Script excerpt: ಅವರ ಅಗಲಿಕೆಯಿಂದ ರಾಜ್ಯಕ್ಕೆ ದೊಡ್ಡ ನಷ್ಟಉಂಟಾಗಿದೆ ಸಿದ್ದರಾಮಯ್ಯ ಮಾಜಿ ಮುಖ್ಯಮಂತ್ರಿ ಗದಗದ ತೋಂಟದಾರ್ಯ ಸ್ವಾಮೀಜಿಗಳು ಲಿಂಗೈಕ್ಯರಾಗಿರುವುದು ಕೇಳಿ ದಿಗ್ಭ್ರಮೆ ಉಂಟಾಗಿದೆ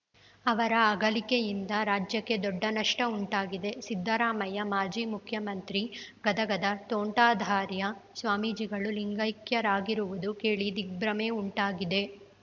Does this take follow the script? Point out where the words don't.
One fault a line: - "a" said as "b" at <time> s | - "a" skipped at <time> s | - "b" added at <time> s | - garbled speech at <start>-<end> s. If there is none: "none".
none